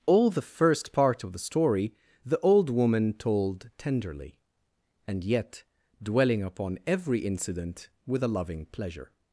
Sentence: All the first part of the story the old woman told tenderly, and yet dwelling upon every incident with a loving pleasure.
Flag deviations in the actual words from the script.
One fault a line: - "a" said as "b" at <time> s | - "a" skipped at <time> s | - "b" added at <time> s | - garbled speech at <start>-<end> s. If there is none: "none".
none